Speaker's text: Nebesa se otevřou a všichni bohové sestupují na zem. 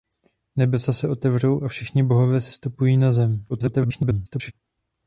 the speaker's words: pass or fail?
fail